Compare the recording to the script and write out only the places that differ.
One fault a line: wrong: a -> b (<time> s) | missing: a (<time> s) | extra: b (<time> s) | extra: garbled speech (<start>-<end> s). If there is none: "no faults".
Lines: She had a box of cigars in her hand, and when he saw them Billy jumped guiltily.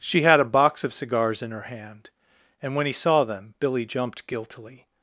no faults